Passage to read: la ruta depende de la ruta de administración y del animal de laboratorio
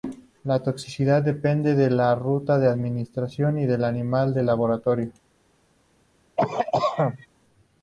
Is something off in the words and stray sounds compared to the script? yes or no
yes